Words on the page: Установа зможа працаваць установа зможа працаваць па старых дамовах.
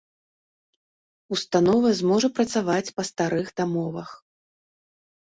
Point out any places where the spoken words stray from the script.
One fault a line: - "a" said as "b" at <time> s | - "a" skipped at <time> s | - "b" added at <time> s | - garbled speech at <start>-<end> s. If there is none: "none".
- "установа зможа працаваць" skipped at 2.9 s